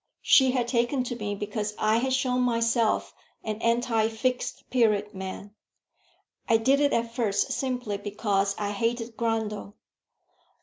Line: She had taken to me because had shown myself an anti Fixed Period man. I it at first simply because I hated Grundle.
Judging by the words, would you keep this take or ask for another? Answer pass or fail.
fail